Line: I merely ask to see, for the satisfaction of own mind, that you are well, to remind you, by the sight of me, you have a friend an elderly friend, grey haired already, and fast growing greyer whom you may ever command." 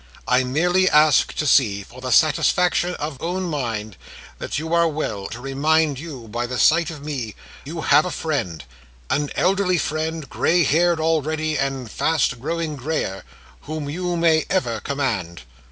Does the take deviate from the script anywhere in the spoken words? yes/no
no